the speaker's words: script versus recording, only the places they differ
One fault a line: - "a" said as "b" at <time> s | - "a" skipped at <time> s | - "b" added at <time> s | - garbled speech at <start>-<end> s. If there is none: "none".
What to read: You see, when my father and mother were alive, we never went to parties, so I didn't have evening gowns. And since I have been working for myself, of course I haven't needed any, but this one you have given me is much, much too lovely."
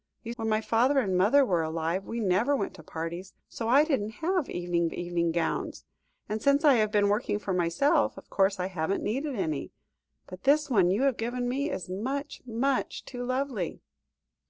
- "see" skipped at 0.3 s
- "evening" added at 4.9 s